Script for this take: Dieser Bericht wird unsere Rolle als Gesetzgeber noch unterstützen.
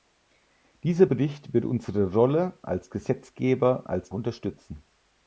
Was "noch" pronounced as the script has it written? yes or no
no